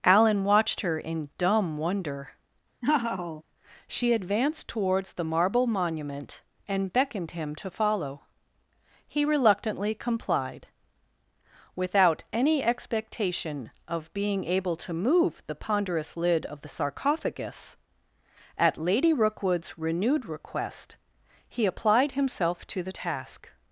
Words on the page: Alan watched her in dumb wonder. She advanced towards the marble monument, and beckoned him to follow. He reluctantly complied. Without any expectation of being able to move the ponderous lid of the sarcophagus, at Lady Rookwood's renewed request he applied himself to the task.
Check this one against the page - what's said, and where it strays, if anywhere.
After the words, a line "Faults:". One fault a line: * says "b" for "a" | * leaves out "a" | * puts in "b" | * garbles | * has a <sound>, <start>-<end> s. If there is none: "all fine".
Alan watched her in dumb wonder. She advanced towards the marble monument, and beckoned him to follow. He reluctantly complied. Without any expectation of being able to move the ponderous lid of the sarcophagus, at Lady Rookwood's renewed request he applied himself to the task.
Faults:
* has a laugh, 2.8-3.4 s